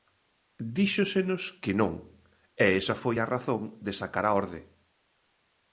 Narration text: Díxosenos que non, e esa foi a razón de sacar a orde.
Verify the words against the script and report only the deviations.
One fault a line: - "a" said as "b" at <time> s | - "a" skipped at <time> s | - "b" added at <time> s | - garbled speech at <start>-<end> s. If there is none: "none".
none